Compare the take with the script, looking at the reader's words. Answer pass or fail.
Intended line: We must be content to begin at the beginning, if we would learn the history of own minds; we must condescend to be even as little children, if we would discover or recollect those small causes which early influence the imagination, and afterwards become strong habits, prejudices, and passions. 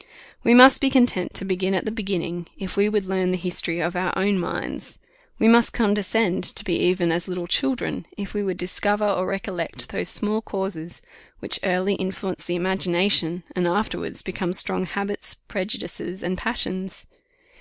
fail